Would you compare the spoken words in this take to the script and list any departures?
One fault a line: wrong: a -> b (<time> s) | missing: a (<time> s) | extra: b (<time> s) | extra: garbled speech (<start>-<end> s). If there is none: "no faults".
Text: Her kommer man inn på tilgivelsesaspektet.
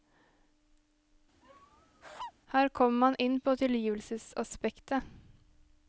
no faults